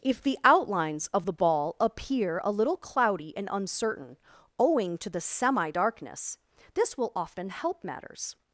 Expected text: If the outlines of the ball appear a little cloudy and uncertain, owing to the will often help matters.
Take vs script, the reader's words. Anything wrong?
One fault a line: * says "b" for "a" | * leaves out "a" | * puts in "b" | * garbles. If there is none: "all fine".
* puts in "semi darkness this"